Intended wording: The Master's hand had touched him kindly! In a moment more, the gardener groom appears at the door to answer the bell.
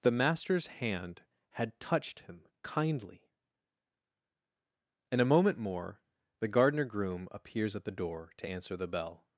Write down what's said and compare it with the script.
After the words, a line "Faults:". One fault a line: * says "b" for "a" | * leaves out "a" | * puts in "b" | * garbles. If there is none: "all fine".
The Master's hand had touched him kindly! In a moment more, the gardener groom appears at the door to answer the bell.
Faults:
all fine